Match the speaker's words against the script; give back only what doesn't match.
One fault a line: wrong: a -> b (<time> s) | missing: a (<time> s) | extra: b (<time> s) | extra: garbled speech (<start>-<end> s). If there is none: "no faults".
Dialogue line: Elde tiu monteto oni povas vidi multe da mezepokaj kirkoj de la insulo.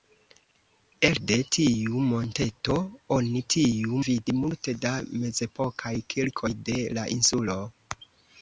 wrong: povas -> tiu (3.5 s)